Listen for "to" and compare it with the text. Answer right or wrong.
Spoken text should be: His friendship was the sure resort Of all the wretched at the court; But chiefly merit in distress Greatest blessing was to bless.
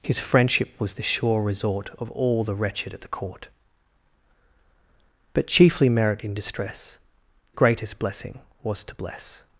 right